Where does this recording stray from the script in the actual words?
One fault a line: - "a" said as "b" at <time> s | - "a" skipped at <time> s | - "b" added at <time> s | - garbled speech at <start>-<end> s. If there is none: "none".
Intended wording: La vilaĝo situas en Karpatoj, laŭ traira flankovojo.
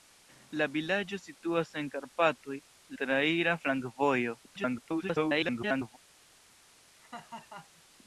- "laŭ" skipped at 2.6 s
- garbled speech at 4.5-6.0 s